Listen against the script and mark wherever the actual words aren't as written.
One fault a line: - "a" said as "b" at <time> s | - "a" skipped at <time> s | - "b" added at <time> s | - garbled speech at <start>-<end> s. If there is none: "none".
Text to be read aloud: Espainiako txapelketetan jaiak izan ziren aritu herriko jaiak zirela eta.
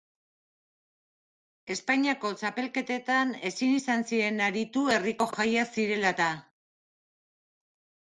- "jaiak" said as "ezin" at 3.5 s